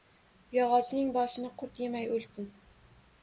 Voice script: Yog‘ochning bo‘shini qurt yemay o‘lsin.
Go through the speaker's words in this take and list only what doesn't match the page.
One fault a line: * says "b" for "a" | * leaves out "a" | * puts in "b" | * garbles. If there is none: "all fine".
all fine